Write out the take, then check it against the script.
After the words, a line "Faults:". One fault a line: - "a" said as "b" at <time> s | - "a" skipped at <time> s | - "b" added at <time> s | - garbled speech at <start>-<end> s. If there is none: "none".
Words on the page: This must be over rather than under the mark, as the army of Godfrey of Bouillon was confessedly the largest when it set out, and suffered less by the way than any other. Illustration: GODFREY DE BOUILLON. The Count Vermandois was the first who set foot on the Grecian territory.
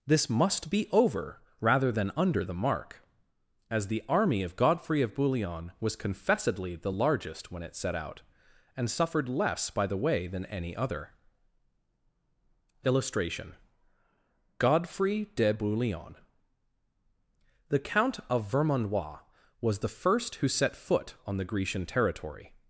This must be over rather than under the mark, as the army of Godfrey of Bouillon was confessedly the largest when it set out, and suffered less by the way than any other. Illustration: GODFREY DE BOUILLON. The Count of Vermandois was the first who set foot on the Grecian territory.
Faults:
- "of" added at 18.3 s